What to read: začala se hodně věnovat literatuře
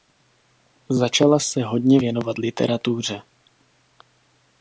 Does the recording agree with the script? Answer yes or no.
yes